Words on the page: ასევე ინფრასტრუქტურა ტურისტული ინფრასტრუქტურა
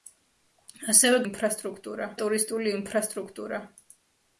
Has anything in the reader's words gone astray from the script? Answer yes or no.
no